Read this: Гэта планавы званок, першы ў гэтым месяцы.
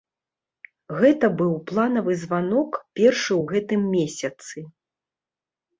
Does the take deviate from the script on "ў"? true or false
false